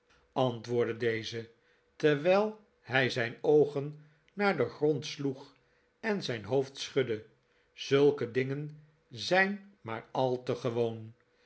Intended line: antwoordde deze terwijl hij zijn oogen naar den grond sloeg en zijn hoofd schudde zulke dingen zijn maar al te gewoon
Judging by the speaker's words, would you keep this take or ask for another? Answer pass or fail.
pass